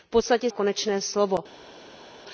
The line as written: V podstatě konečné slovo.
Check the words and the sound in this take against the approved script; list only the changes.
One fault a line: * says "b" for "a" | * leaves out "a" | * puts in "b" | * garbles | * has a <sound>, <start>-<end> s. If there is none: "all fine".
all fine